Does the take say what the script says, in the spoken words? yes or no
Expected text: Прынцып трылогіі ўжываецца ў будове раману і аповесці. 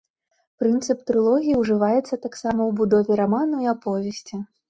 no